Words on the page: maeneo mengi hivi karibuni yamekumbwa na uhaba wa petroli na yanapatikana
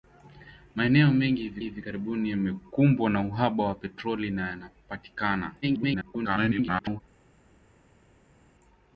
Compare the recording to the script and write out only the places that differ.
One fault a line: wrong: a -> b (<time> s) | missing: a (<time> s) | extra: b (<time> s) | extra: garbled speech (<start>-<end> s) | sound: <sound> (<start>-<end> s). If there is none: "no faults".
extra: hivi (1.6 s)
extra: garbled speech (5.6-7.0 s)